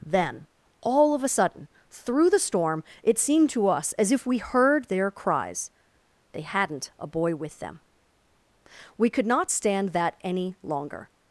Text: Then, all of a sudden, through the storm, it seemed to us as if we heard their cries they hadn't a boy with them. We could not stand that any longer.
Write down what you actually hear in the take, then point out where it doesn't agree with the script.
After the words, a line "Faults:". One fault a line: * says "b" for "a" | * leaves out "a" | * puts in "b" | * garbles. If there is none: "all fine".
Then, all of a sudden, through the storm, it seemed to us as if we heard their cries they hadn't a boy with them. We could not stand that any longer.
Faults:
all fine